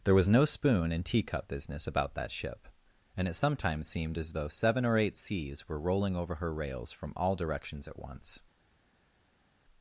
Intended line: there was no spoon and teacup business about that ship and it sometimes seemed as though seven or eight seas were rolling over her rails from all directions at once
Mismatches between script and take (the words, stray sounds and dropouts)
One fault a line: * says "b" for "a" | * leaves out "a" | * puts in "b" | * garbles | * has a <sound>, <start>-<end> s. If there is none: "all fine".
all fine